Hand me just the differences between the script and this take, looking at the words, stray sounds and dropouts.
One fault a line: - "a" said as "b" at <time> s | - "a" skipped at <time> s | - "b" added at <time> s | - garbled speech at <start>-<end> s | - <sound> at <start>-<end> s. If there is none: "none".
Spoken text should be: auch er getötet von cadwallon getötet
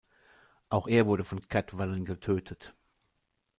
- "getötet" said as "wurde" at 1.1 s